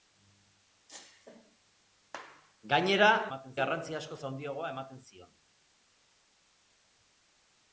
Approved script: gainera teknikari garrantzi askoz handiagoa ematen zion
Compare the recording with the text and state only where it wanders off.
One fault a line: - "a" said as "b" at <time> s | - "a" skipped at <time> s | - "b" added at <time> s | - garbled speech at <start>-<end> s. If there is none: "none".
- "teknikari" said as "ematen" at 3.3 s